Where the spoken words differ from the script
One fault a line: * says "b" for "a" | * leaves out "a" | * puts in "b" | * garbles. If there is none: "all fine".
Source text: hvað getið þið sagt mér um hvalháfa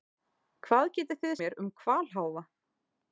* leaves out "sagt"